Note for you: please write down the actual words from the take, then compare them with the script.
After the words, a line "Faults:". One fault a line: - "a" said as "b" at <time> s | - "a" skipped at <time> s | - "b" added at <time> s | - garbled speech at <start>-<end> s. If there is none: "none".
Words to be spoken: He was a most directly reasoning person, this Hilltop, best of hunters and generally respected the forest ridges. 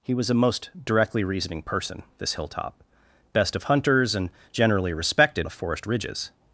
He was a most directly reasoning person, this Hilltop, best of hunters and generally respected the forest ridges.
Faults:
none